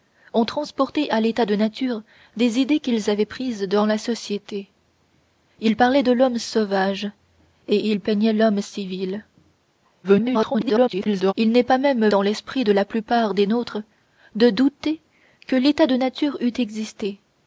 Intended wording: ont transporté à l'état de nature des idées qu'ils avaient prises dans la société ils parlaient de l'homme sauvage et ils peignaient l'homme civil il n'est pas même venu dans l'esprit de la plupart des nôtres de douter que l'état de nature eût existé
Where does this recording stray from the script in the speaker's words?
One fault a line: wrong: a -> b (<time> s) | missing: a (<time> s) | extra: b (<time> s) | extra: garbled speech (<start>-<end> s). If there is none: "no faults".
extra: garbled speech (10.0-11.3 s)
missing: venu (12.1 s)